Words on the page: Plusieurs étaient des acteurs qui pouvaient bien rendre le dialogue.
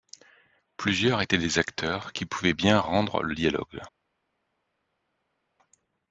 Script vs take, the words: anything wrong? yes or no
no